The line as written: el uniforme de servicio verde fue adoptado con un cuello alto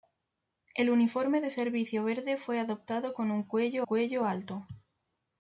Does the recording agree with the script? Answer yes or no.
no